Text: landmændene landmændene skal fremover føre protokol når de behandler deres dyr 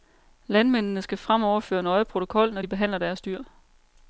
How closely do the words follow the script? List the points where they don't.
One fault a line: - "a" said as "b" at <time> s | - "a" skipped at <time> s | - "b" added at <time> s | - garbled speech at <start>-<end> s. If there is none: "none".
- "landmændene" skipped at 1.0 s
- "nøje" added at 1.8 s